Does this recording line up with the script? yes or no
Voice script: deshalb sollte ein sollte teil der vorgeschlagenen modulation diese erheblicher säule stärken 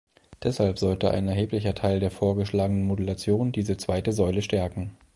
no